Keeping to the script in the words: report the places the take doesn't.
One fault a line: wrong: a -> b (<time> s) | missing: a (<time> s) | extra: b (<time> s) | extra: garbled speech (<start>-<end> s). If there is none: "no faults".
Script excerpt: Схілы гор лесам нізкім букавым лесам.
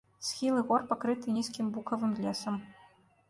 wrong: лесам -> пакрыты (0.9 s)